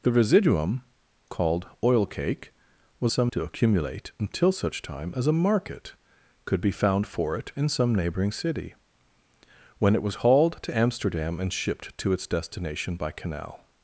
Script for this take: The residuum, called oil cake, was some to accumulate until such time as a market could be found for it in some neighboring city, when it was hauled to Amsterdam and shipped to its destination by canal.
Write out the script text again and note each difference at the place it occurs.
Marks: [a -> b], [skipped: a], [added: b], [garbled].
The residuum, called oil cake, was some to accumulate until such time as a market could be found for it in some neighboring city, when it was hauled to Amsterdam and shipped to its destination by canal.